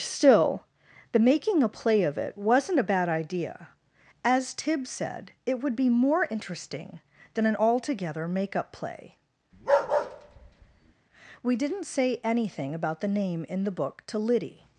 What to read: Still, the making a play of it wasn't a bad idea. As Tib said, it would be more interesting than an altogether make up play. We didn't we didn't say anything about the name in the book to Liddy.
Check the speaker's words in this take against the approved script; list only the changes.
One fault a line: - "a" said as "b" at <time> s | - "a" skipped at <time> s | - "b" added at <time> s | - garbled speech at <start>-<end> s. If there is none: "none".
- "we didn't" skipped at 11.8 s